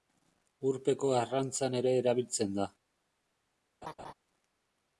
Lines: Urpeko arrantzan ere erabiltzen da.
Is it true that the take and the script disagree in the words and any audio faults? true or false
true